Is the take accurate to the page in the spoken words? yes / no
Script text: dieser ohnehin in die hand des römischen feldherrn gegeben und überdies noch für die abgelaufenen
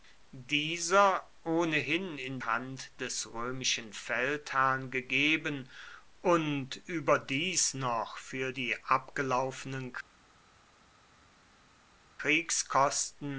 no